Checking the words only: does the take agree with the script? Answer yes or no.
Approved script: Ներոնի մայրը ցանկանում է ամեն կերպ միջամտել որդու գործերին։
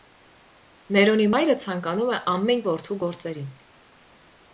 no